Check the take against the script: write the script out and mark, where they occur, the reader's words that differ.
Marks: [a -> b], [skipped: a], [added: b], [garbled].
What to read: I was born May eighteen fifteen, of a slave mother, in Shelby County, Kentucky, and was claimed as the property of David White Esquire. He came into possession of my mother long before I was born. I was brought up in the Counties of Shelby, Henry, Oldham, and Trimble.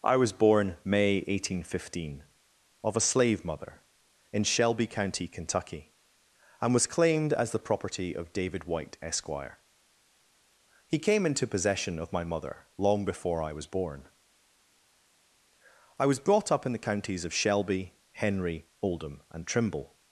I was born May eighteen fifteen, of a slave mother, in Shelby County, Kentucky, and was claimed as the property of David White Esquire. He came into possession of my mother long before I was born. I was brought up in the Counties of Shelby, Henry, Oldham, and Trimble.